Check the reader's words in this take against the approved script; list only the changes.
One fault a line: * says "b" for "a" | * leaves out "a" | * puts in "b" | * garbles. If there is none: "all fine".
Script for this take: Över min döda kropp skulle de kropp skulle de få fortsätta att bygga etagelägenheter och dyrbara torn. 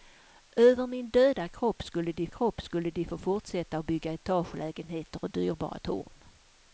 all fine